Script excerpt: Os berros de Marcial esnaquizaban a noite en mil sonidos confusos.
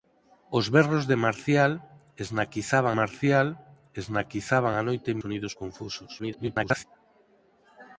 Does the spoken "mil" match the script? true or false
false